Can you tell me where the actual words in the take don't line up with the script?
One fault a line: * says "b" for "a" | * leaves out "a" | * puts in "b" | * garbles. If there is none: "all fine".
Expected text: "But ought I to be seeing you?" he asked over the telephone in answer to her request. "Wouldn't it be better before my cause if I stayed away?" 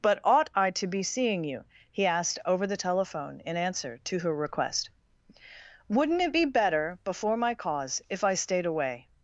all fine